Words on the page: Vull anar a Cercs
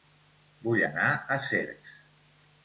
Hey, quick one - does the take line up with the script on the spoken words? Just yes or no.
yes